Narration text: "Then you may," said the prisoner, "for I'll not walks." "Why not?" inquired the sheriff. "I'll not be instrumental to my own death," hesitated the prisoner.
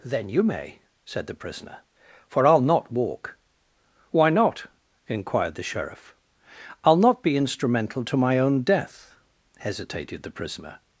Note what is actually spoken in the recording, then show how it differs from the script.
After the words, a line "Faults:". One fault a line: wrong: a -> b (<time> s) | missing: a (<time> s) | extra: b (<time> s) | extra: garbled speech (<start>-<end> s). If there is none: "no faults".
"Then you may," said the prisoner, "for I'll not walk." "Why not?" inquired the sheriff. "I'll not be instrumental to my own death," hesitated the prisoner.
Faults:
wrong: walks -> walk (2.9 s)